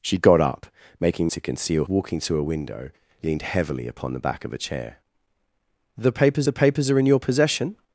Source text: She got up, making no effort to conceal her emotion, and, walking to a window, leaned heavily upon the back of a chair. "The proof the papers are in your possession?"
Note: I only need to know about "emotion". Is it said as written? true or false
false